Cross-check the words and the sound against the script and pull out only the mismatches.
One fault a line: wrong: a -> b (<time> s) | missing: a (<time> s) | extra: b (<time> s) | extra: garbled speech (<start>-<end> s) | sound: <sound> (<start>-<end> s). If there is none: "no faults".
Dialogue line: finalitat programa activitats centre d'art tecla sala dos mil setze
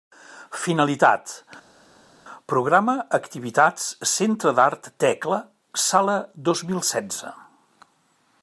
no faults